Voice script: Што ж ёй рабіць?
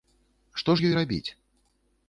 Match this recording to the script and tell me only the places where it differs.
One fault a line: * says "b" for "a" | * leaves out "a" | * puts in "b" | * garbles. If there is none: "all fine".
all fine